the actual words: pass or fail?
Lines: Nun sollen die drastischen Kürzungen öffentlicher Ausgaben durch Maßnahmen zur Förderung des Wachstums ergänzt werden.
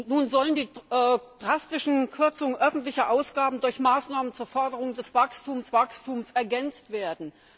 fail